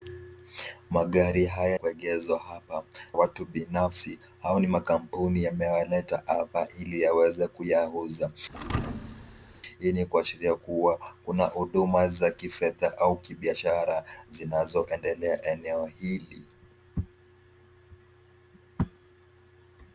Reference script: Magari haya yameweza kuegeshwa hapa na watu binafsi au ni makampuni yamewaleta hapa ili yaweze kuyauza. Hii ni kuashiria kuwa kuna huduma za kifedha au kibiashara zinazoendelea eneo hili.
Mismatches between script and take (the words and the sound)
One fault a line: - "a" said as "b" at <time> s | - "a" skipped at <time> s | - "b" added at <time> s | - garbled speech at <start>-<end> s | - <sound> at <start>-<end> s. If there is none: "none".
- "yameweza" skipped at 1.8 s
- "na" skipped at 2.8 s
- thud at 8.5-9.6 s